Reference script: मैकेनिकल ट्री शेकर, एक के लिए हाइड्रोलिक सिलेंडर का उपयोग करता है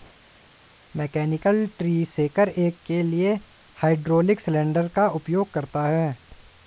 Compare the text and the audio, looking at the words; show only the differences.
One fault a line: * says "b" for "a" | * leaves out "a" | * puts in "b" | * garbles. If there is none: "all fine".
all fine